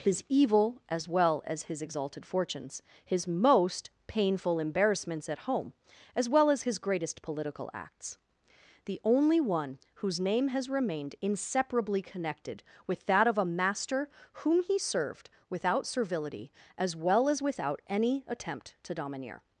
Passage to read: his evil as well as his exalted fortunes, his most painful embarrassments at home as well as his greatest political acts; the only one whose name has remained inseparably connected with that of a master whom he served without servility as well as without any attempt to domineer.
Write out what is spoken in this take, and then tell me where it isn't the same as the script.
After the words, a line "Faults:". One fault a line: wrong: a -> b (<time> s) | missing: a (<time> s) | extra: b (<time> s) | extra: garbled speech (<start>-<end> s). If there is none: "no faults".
his evil as well as his exalted fortunes, his most painful embarrassments at home as well as his greatest political acts; the only one whose name has remained inseparably connected with that of a master whom he served without servility as well as without any attempt to domineer.
Faults:
no faults